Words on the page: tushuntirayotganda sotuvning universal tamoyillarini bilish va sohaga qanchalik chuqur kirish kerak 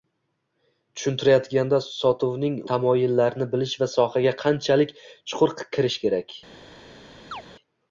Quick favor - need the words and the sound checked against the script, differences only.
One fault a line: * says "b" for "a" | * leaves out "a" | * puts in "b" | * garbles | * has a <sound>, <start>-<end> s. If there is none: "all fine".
* leaves out "universal"
* has a chirp, 7.3-7.4 s